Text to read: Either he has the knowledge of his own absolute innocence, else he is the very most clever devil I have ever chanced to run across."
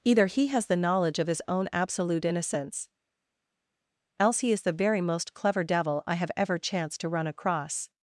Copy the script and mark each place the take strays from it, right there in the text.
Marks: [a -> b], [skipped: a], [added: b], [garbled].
Either he has the knowledge of his own absolute innocence, else he is the very most clever devil I have ever chanced to run across."